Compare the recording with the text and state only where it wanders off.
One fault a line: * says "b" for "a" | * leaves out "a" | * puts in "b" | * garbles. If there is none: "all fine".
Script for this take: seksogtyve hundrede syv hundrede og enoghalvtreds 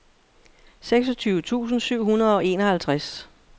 * says "tusind" for "hundrede"